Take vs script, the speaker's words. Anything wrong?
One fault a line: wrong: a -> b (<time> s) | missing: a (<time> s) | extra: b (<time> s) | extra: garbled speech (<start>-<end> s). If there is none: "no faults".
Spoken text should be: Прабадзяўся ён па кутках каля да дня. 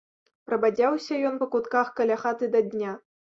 extra: хаты (2.2 s)